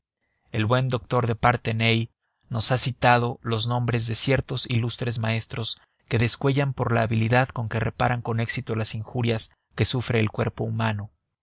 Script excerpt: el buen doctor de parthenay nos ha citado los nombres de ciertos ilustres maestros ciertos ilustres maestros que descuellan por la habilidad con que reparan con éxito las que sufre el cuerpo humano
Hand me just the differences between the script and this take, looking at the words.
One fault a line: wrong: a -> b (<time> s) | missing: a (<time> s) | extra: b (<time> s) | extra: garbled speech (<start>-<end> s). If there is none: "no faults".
missing: ciertos ilustres maestros (5.8 s)
extra: injurias (8.9 s)